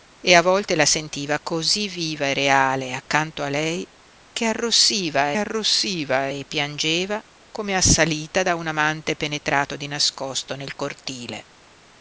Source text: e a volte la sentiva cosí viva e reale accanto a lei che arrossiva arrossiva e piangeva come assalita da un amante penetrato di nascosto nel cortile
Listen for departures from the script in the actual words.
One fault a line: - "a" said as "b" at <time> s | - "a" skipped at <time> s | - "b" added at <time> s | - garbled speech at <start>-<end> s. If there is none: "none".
none